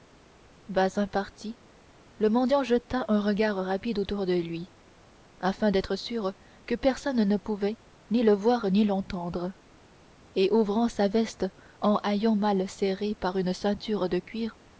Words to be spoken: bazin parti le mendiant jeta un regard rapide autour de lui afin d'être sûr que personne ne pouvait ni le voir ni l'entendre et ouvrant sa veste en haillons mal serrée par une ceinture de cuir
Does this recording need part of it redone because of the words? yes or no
no